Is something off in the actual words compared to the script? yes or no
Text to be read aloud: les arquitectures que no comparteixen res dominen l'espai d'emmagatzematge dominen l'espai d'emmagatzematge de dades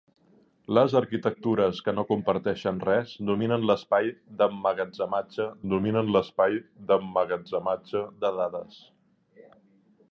no